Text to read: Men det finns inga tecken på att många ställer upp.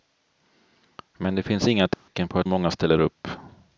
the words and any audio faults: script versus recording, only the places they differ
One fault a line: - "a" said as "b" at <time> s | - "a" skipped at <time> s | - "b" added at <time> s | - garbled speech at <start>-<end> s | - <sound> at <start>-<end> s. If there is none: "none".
- dropout at 1.9-2.1 s